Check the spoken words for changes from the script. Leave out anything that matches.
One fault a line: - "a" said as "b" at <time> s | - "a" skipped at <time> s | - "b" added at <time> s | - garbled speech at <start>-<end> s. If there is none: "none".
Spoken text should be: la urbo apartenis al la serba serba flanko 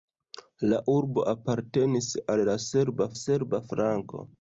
none